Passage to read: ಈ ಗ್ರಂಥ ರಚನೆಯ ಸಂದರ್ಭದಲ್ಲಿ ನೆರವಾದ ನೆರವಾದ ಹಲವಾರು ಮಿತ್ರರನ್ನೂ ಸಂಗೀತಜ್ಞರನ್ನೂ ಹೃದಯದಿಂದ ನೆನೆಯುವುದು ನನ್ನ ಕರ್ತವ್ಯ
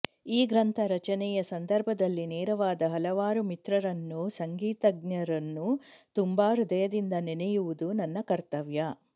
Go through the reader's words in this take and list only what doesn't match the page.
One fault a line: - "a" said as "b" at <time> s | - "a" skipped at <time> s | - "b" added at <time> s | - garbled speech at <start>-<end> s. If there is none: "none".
- "ನೆರವಾದ" skipped at 2.9 s
- "ತುಂಬ" added at 6.2 s